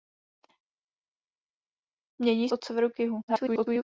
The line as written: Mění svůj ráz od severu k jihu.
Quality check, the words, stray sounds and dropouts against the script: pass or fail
fail